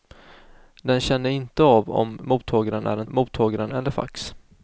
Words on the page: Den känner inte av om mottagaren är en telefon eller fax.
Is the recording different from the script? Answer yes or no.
yes